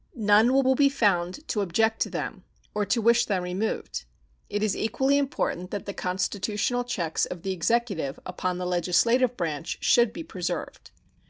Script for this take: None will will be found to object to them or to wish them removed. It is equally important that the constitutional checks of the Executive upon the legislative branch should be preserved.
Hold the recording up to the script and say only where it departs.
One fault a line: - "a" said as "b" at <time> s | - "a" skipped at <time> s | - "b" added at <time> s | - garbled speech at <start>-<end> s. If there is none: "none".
none